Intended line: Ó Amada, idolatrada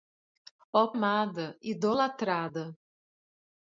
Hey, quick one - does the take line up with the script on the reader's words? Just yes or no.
yes